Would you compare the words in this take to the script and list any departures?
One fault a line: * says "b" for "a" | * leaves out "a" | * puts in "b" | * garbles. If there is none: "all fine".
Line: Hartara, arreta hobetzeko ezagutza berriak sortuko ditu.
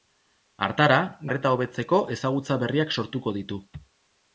all fine